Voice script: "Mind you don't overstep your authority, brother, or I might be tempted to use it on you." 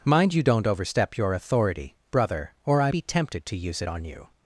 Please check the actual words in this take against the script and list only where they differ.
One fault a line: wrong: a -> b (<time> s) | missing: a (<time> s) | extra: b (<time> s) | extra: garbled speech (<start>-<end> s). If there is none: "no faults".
missing: might (2.9 s)